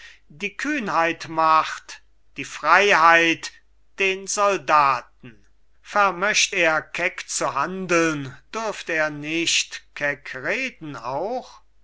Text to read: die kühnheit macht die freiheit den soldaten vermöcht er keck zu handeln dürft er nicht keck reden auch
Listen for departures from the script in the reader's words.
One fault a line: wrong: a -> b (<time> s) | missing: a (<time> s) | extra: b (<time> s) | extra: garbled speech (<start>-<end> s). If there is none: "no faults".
no faults